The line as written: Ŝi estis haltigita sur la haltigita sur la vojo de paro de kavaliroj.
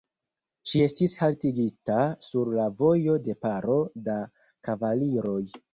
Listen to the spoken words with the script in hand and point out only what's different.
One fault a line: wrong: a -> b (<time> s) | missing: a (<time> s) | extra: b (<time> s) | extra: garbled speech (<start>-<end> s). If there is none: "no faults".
missing: haltigita sur la (2.7 s)
wrong: de -> da (4.1 s)